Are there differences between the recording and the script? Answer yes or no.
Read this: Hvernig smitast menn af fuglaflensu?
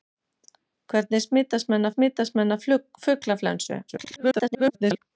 yes